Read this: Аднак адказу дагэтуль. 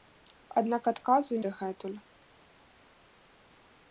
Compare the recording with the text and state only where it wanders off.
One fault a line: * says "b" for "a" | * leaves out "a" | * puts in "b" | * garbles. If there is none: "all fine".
all fine